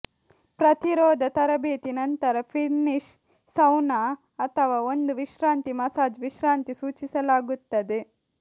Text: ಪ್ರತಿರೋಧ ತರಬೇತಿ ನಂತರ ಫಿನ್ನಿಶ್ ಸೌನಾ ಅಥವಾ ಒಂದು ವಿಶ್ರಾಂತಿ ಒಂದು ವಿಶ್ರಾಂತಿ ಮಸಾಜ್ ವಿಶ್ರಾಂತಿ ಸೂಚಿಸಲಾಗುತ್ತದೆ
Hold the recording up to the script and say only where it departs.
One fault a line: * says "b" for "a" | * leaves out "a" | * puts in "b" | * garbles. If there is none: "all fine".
* leaves out "ಒಂದು ವಿಶ್ರಾಂತಿ"